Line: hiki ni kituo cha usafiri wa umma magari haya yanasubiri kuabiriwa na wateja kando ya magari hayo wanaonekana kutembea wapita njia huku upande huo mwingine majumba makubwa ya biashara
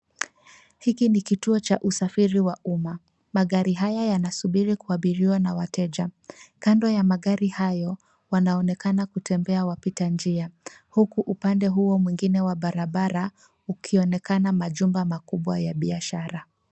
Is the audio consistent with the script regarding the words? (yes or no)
no